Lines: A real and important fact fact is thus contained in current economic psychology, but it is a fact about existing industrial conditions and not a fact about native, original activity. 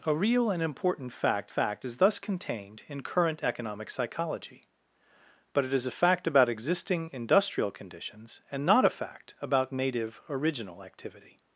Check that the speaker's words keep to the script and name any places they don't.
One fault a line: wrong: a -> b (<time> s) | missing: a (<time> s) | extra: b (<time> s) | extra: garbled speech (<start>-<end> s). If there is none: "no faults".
no faults